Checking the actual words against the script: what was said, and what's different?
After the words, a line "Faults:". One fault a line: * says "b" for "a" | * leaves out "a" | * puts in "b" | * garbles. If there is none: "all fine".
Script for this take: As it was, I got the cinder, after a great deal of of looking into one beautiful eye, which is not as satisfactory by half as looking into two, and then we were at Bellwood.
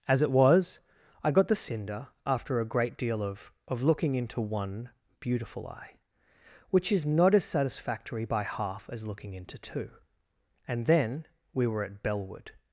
As it was, I got the cinder, after a great deal of of looking into one beautiful eye, which is not as satisfactory by half as looking into two, and then we were at Bellwood.
Faults:
all fine